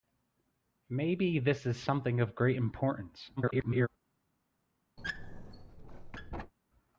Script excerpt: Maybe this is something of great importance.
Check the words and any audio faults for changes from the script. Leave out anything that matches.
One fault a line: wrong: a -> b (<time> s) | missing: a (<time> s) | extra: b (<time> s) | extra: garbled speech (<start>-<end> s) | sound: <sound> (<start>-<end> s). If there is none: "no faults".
extra: garbled speech (3.4-3.9 s)
sound: squeak (5.0-6.5 s)